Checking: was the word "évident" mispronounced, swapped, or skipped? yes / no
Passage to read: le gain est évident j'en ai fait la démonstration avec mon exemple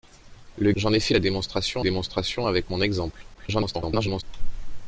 yes